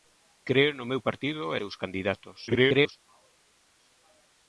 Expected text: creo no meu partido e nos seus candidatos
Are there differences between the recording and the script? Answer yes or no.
yes